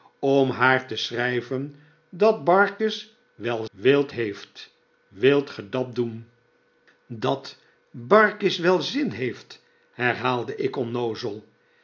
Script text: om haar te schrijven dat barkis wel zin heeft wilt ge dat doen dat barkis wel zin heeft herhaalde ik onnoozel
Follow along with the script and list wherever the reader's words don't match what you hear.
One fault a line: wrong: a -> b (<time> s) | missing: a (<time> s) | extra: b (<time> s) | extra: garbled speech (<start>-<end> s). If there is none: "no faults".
wrong: zin -> wilt (3.7 s)